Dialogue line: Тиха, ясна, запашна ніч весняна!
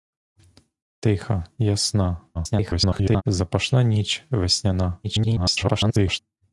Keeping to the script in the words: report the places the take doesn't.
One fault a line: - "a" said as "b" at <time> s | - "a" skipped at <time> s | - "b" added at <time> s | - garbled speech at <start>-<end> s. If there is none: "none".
- garbled speech at 2.3-3.2 s
- garbled speech at 5.0-6.2 s